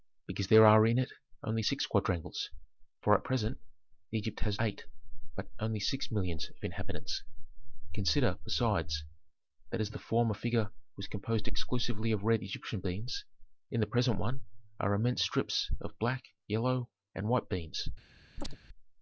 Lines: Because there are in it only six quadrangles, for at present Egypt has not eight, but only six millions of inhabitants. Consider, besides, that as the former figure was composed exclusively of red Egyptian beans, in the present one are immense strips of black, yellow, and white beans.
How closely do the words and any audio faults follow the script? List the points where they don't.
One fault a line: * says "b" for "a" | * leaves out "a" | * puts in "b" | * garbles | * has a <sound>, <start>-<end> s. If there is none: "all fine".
* leaves out "not"
* has a chirp, 18.4-18.6 s